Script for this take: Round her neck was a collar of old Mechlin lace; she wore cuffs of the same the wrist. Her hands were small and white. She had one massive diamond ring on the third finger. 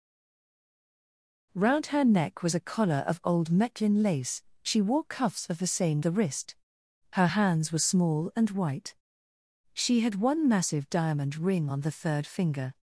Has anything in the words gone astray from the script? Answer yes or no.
no